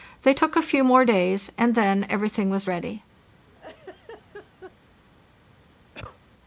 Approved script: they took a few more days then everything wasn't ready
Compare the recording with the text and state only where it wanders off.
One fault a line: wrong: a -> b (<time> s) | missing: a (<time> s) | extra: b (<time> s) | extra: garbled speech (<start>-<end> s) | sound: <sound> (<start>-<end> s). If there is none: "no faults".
extra: and (1.6 s)
wrong: wasn't -> was (2.5 s)
sound: laugh (3.5-4.8 s)
sound: cough (5.9-6.2 s)